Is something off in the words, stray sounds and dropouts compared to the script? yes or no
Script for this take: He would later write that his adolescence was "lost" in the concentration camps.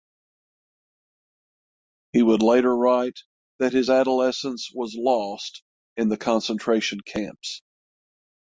no